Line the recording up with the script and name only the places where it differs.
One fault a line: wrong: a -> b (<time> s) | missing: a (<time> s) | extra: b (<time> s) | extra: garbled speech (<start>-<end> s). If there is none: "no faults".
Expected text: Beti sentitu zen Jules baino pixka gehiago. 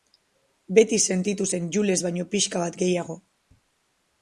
extra: bat (2.6 s)